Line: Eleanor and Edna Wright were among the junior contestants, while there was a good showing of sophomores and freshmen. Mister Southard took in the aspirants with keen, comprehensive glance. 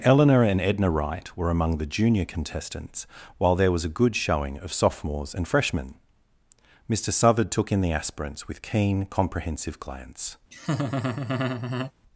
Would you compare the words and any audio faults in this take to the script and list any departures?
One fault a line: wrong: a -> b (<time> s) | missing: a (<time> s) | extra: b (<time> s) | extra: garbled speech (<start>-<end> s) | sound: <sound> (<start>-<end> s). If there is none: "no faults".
sound: laugh (10.5-11.9 s)